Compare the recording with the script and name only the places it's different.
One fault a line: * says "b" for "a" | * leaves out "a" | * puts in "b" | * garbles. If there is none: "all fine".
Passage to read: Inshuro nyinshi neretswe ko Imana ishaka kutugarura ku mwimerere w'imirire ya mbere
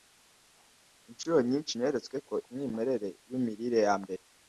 * leaves out "Imana ishaka kutugarura"